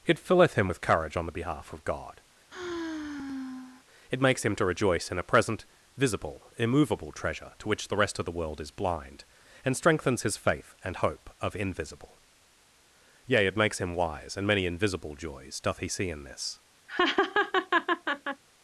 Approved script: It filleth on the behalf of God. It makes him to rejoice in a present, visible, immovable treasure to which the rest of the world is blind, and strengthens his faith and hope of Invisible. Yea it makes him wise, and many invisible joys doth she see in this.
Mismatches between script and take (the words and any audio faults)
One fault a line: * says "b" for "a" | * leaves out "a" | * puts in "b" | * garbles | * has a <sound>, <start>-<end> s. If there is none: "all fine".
* puts in "him with courage"
* has a sigh, 2.5-3.9 s
* says "he" for "she"
* has a laugh, 16.9-18.4 s